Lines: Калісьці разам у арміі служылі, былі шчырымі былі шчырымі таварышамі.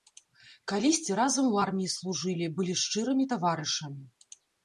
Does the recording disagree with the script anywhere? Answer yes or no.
yes